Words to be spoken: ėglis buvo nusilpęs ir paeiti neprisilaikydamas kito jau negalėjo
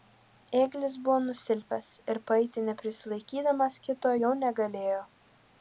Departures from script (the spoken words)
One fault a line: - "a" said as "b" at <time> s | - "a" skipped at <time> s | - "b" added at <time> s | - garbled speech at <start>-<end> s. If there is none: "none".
none